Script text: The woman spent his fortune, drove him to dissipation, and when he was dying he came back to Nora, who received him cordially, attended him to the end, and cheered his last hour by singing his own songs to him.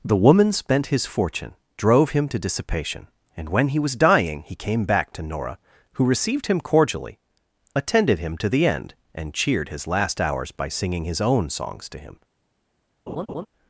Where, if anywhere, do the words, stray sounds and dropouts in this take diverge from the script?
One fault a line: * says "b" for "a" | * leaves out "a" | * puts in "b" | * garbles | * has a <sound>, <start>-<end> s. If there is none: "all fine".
* says "hours" for "hour"
* has a laugh, 13.1-13.5 s